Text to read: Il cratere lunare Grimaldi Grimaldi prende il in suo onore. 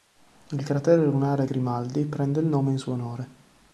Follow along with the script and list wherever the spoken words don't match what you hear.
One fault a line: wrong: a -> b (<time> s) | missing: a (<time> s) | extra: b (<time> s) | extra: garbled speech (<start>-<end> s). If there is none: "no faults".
missing: Grimaldi (2.0 s)
extra: nome (2.5 s)